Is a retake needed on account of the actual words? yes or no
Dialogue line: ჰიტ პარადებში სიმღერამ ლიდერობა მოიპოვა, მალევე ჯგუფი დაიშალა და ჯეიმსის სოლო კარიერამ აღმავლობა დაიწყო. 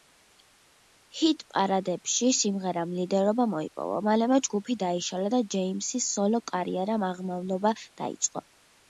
no